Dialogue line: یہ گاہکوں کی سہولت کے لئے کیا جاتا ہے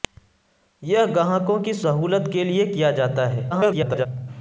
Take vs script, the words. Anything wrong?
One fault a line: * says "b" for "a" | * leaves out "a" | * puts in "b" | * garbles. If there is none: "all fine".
* garbles